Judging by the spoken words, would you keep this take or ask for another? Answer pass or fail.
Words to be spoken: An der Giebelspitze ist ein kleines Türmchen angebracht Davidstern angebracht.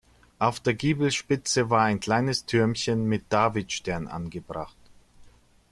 fail